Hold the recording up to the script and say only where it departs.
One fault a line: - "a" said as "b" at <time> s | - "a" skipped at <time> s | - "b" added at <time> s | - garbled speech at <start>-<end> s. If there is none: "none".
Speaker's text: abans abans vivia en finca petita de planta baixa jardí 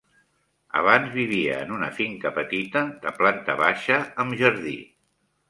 - "abans" skipped at 1.1 s
- "una" added at 1.8 s
- "amb" added at 4.2 s